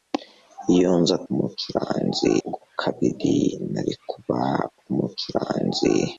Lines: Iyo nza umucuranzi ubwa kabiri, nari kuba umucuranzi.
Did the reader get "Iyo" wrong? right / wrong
right